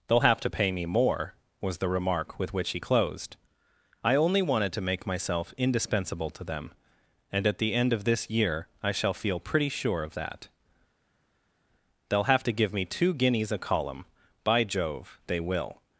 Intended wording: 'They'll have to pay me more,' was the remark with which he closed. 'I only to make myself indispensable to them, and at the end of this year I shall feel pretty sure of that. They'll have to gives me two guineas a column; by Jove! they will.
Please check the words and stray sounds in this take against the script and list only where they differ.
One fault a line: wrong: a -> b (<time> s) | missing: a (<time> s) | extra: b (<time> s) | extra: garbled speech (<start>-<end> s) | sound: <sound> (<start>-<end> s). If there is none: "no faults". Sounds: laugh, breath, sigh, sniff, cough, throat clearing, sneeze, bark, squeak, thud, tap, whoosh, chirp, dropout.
extra: wanted (4.4 s)
wrong: gives -> give (12.5 s)